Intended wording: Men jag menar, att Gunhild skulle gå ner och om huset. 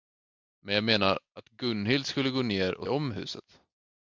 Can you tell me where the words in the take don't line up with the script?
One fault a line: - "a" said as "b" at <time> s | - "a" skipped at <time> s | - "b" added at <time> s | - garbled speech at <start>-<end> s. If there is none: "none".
none